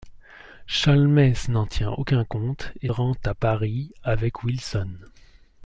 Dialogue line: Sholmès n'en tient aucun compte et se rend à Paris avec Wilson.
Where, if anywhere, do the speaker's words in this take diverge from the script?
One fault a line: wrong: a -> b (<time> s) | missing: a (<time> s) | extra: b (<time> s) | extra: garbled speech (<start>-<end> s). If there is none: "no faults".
missing: se (2.9 s)